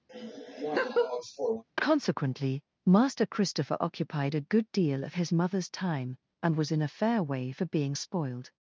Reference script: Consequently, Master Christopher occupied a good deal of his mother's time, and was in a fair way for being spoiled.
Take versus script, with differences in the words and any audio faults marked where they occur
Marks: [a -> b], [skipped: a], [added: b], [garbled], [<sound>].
[laugh] Consequently, Master Christopher occupied a good deal of his mother's time, and was in a fair way for being spoiled.